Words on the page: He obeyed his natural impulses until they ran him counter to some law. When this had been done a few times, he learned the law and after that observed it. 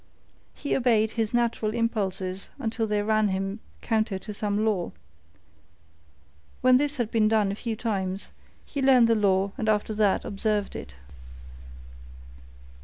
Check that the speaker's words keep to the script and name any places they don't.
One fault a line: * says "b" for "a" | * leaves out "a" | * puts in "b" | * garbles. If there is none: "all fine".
all fine